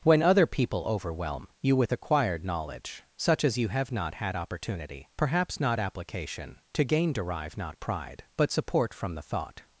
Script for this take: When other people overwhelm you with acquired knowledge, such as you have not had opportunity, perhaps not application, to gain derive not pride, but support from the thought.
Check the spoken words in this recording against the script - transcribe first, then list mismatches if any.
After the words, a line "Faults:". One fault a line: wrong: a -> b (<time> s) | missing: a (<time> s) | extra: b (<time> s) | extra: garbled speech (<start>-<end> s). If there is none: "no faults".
When other people overwhelm you with acquired knowledge, such as you have not had opportunity, perhaps not application, to gain derive not pride, but support from the thought.
Faults:
no faults